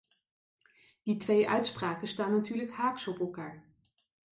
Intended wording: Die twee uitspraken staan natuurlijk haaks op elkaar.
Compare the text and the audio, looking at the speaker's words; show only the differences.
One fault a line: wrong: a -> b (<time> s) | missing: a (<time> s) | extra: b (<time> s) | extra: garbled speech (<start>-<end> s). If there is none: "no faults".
no faults